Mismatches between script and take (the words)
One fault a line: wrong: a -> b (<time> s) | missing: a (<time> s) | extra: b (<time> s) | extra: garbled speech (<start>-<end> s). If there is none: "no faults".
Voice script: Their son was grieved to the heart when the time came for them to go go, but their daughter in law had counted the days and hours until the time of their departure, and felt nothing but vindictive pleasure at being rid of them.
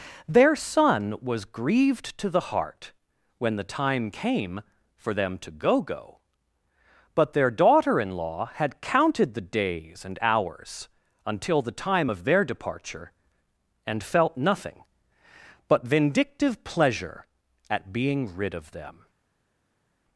no faults